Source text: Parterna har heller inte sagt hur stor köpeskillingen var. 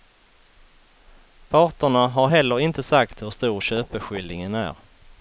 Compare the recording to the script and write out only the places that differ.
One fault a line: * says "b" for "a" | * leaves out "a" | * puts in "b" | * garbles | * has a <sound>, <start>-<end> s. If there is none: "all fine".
* says "är" for "var"